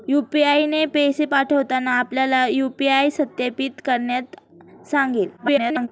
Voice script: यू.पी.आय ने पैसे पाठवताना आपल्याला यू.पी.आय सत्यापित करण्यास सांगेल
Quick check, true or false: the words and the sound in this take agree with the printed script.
false